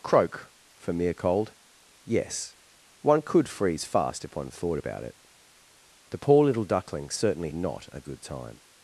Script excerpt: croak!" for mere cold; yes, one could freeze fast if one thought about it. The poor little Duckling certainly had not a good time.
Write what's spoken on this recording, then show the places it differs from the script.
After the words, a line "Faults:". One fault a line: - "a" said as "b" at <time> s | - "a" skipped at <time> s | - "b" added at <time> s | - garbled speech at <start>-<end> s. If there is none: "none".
croak!" for mere cold; yes, one could freeze fast if one thought about it. The poor little Duckling certainly not a good time.
Faults:
- "had" skipped at 7.5 s